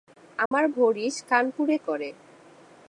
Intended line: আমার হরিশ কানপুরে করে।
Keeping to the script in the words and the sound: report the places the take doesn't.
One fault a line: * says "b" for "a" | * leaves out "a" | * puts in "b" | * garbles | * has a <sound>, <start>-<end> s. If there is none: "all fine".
* has a dropout, 0.5-0.5 s